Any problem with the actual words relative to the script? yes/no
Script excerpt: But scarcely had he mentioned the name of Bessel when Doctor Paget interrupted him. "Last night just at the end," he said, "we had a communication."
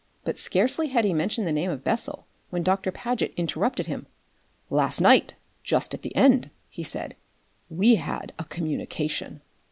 no